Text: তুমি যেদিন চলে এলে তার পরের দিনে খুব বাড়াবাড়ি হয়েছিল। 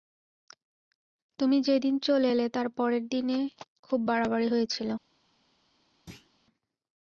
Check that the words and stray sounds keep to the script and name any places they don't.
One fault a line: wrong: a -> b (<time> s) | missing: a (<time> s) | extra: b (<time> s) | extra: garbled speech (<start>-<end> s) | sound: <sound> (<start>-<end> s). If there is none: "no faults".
sound: thud (6.1-6.3 s)